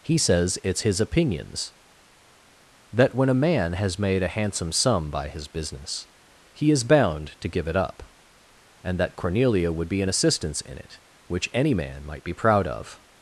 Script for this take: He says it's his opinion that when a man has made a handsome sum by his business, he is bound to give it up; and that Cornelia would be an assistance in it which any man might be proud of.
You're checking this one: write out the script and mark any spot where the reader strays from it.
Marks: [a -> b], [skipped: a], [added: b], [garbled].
He says it's his [opinion -> opinions] that when a man has made a handsome sum by his business, he is bound to give it up; and that Cornelia would be an assistance in it which any man might be proud of.